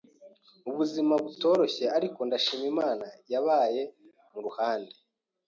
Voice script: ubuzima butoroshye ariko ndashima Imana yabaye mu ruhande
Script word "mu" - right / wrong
right